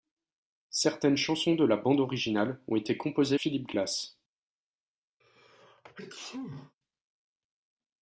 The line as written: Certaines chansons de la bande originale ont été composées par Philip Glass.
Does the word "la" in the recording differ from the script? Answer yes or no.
no